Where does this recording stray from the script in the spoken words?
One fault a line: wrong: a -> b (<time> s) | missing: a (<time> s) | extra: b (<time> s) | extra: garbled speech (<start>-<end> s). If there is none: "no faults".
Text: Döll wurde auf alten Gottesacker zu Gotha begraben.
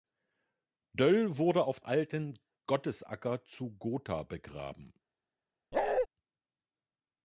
no faults